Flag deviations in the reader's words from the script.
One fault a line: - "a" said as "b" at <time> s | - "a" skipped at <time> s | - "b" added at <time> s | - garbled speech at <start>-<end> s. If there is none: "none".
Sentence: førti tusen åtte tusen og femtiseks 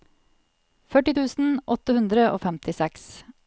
- "tusen" said as "hundre" at 2.0 s